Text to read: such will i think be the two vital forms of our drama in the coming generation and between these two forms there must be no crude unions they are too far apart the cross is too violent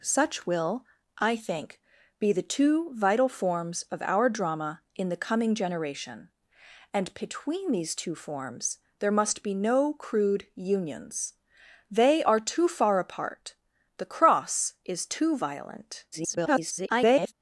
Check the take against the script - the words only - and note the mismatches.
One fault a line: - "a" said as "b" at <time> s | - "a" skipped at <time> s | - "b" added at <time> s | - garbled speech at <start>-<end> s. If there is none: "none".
- garbled speech at 16.1-17.3 s